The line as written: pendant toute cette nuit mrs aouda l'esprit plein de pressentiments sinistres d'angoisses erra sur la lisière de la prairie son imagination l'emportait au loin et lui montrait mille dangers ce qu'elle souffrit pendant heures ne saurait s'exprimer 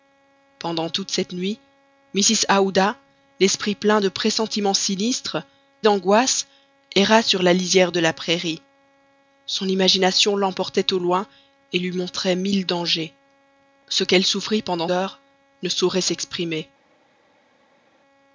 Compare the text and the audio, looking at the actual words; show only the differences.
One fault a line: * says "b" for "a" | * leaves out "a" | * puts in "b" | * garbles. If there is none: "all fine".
all fine